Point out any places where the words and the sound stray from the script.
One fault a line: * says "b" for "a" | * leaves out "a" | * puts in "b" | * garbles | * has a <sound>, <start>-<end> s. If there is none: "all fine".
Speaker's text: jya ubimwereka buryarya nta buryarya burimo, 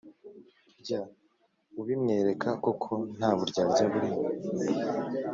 * says "koko" for "buryarya"